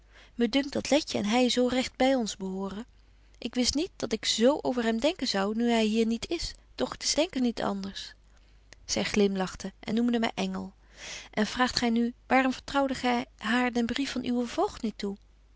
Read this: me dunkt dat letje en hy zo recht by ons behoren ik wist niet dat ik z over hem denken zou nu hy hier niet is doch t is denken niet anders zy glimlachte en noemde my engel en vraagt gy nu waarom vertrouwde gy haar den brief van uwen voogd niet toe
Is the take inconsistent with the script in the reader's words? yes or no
no